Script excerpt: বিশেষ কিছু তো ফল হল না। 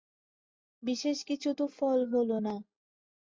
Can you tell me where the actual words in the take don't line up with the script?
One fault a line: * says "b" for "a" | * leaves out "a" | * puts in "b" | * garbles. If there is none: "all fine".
all fine